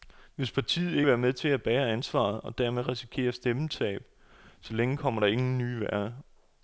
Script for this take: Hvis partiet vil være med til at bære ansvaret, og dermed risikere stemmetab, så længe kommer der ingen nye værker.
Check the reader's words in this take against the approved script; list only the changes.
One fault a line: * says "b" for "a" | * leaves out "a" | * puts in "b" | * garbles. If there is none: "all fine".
all fine